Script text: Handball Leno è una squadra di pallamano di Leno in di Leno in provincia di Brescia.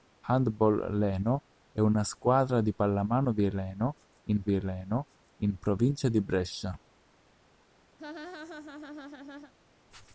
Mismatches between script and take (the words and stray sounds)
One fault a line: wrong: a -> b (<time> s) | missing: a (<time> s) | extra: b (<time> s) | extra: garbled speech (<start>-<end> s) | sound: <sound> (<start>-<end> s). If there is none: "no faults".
sound: laugh (8.0-9.5 s)